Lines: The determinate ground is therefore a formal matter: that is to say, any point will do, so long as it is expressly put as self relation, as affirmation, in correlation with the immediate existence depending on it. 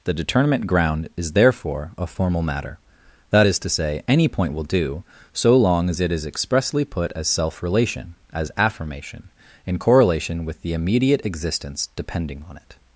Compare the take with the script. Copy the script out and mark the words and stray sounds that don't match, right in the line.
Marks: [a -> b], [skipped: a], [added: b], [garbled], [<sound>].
The determinate ground is therefore a formal matter: that is to say, any point will do, so long as it is expressly put as self relation, as affirmation, in correlation with the immediate existence depending on it.